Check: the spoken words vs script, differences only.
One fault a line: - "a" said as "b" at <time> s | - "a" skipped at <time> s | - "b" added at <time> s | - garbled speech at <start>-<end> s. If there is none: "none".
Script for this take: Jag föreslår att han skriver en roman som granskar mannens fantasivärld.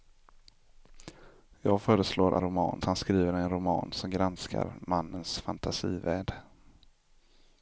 - "att" said as "roman" at 2.4 s